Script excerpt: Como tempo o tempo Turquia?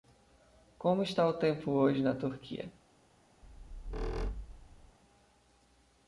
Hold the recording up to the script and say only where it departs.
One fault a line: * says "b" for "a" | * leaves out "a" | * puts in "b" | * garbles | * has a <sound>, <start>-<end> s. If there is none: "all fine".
* says "está" for "tempo"
* puts in "hoje na"
* has a squeak, 3.4-5.0 s